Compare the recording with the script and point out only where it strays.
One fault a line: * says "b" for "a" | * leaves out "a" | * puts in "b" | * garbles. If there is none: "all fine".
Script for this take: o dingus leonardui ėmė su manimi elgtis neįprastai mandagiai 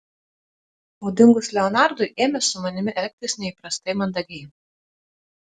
all fine